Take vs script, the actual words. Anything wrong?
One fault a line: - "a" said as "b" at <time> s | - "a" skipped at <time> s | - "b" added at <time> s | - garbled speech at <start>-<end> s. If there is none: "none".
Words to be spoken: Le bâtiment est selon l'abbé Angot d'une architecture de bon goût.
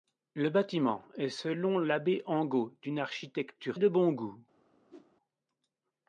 none